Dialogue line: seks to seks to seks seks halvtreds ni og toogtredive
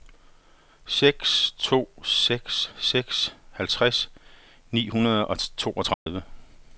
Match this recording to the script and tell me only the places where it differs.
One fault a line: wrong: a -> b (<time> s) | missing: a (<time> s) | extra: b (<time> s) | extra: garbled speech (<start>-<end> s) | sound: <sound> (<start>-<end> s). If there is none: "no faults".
missing: to (2.7 s)
missing: seks (3.4 s)
extra: hundrede (4.9 s)
sound: dropout (5.9-6.1 s)